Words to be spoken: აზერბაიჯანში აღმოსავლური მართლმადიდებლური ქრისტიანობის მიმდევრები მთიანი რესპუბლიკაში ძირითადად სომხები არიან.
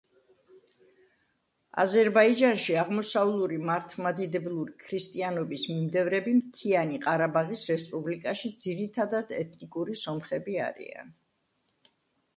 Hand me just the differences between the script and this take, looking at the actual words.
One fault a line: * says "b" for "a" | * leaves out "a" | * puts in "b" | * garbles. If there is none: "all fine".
* puts in "ყარაბაღის"
* puts in "ეთნიკური"